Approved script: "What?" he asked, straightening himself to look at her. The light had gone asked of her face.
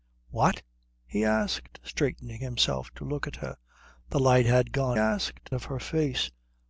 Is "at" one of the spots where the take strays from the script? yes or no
no